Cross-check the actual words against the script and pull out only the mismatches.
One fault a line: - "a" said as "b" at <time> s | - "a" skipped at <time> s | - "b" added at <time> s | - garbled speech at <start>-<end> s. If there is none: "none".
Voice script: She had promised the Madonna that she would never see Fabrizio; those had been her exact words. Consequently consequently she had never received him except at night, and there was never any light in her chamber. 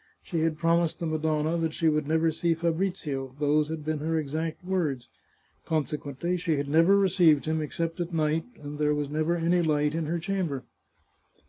- "consequently" skipped at 6.4 s